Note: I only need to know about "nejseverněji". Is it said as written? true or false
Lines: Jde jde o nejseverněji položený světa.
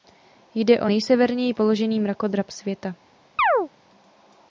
true